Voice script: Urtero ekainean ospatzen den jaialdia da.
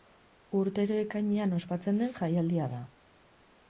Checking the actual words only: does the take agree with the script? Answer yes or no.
yes